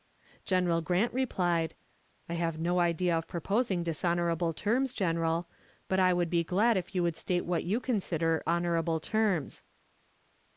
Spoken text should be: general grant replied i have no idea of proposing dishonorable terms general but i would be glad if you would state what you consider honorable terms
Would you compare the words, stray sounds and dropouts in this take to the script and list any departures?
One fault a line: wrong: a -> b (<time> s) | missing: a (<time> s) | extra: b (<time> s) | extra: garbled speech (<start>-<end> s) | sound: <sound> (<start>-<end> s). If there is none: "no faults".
no faults